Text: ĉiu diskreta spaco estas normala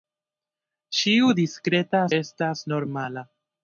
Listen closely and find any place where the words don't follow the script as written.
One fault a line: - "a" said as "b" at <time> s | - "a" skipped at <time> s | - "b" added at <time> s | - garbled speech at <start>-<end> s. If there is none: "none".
- "spaco" skipped at 2.0 s